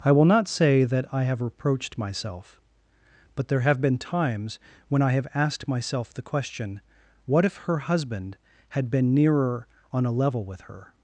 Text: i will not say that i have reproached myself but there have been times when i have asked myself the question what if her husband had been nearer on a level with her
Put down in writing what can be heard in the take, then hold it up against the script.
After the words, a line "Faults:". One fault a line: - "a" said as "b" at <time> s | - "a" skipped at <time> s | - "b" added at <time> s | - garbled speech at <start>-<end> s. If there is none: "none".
i will not say that i have reproached myself but there have been times when i have asked myself the question what if her husband had been nearer on a level with her
Faults:
none